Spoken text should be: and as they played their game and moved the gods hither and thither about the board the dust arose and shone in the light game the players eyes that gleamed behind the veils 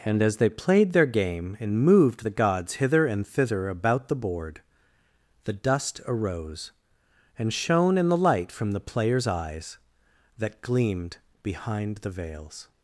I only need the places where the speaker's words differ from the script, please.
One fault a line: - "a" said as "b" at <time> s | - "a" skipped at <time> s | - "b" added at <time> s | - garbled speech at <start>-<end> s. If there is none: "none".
- "game" said as "from" at 8.5 s